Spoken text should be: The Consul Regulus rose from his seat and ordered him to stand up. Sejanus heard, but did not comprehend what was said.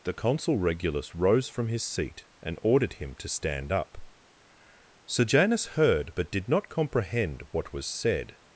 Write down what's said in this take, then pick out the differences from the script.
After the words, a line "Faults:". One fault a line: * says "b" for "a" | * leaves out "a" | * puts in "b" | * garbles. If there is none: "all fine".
The Consul Regulus rose from his seat and ordered him to stand up. Sejanus heard, but did not comprehend what was said.
Faults:
all fine